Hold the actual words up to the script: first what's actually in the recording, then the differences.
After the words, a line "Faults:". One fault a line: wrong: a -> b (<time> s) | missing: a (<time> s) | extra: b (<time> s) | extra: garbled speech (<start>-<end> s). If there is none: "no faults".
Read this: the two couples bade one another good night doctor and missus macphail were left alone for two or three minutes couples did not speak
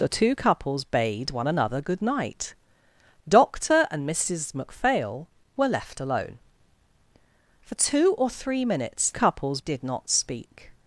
the two couples bade one another good night doctor and missus macphail were left alone for two or three minutes couples did not speak
Faults:
no faults